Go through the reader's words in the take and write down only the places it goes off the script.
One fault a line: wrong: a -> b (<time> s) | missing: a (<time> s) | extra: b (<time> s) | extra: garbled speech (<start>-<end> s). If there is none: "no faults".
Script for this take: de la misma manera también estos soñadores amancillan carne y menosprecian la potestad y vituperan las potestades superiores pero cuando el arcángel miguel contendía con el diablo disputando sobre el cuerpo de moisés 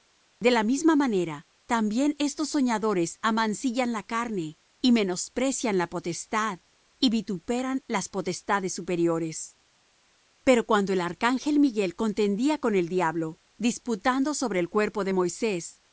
extra: la (3.9 s)